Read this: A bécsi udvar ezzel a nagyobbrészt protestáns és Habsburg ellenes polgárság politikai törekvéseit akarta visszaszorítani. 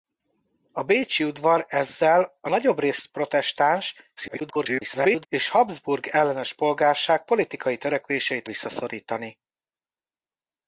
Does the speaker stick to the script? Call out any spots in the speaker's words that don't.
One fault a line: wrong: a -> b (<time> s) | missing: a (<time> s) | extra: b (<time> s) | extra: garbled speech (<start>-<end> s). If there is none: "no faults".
extra: garbled speech (4.2-5.3 s)
missing: akarta (8.5 s)